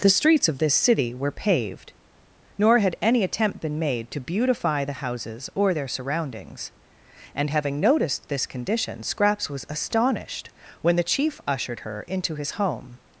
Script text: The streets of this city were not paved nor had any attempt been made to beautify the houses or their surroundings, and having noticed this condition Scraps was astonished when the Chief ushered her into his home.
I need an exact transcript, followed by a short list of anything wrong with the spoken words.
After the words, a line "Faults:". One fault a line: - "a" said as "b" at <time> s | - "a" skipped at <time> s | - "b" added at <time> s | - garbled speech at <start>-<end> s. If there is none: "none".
The streets of this city were paved nor had any attempt been made to beautify the houses or their surroundings, and having noticed this condition Scraps was astonished when the Chief ushered her into his home.
Faults:
- "not" skipped at 1.3 s